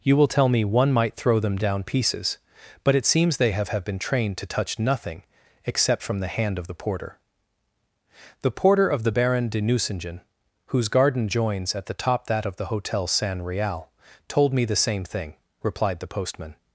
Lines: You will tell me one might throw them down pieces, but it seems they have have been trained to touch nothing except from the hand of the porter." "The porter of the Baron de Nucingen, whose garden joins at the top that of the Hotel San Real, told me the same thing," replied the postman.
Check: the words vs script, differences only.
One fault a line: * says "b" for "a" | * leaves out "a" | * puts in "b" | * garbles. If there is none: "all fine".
all fine